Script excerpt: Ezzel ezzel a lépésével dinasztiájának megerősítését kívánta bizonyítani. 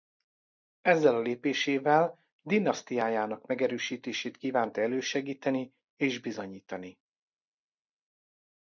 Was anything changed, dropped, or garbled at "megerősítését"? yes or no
no